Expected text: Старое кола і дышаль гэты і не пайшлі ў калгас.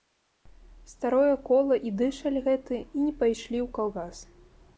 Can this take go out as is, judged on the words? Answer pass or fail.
pass